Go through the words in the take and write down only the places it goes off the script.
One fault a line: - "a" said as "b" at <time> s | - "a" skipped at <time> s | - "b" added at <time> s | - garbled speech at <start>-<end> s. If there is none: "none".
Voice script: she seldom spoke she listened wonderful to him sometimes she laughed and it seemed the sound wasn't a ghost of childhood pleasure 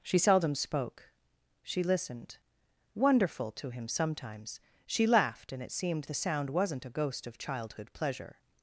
none